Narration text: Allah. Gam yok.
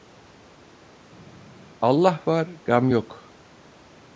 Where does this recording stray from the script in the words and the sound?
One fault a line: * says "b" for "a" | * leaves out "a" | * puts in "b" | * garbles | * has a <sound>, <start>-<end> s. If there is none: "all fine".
* puts in "var"